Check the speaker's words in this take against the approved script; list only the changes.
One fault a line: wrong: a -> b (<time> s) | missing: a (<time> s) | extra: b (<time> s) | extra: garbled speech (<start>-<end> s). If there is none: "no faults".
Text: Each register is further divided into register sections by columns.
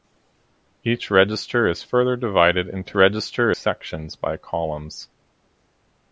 no faults